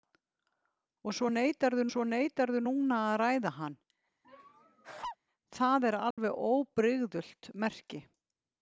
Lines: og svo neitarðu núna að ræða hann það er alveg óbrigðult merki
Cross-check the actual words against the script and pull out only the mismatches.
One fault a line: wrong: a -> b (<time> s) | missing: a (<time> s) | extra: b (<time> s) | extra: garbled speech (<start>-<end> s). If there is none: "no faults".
extra: svo neitarðu (1.9 s)